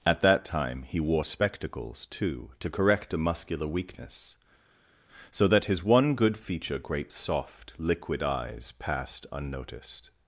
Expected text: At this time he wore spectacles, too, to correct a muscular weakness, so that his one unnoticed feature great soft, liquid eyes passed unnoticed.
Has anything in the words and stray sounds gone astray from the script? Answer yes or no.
yes